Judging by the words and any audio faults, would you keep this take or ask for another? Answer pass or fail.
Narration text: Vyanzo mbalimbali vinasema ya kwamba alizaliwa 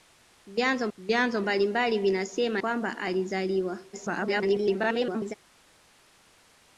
fail